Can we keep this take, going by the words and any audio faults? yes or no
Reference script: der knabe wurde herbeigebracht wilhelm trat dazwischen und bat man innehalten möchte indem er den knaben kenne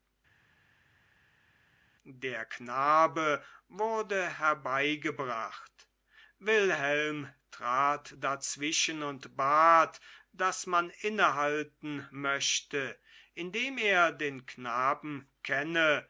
no